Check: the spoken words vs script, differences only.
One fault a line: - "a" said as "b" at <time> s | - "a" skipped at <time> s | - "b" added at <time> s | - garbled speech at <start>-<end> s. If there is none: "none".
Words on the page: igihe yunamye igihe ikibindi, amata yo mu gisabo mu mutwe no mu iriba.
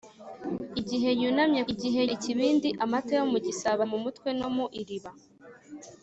none